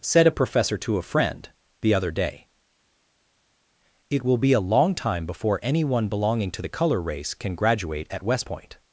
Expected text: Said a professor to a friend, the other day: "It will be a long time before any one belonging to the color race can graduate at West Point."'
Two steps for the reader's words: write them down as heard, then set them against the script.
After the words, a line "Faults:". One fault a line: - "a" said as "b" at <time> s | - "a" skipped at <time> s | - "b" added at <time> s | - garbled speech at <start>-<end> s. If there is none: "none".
Said a professor to a friend, the other day: "It will be a long time before any one belonging to the color race can graduate at West Point."'
Faults:
none